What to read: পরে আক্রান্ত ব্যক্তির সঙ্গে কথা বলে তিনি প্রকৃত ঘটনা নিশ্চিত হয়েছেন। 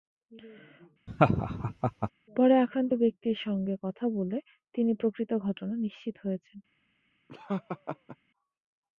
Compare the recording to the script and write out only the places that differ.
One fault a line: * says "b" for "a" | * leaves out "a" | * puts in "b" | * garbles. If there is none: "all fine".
all fine